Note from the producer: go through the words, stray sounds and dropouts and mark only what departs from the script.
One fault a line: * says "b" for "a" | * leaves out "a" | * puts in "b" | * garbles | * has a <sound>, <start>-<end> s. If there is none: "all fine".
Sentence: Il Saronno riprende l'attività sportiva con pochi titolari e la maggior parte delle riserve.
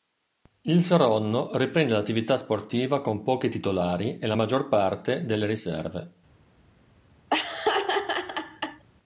* has a laugh, 7.3-8.8 s